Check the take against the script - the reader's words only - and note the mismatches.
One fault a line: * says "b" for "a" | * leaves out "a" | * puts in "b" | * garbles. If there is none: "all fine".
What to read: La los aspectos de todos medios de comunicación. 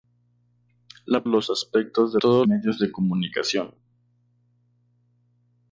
all fine